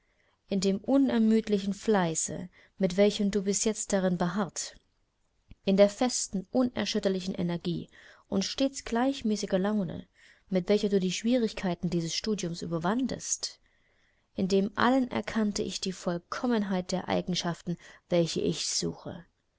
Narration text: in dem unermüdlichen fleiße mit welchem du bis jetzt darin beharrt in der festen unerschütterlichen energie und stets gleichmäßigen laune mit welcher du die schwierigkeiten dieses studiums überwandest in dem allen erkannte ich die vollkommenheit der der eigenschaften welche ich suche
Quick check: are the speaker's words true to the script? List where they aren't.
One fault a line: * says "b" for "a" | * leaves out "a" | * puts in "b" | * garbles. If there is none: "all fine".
* leaves out "der"